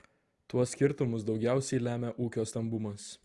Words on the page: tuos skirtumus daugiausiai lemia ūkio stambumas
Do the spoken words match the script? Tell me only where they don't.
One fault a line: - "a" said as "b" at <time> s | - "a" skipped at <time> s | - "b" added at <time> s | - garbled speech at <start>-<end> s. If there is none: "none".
none